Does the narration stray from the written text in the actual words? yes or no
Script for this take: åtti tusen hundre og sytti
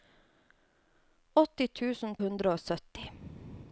no